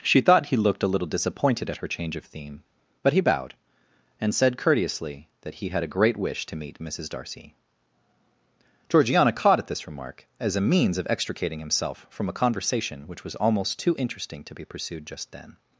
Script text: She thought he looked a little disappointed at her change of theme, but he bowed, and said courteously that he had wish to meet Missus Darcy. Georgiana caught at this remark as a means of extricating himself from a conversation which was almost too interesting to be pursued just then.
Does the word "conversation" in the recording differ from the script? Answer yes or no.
no